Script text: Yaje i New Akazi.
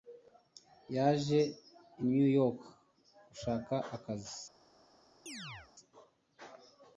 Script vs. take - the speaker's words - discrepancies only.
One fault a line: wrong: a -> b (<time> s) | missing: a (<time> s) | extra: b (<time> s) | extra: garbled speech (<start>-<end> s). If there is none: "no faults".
extra: York gushaka (2.4 s)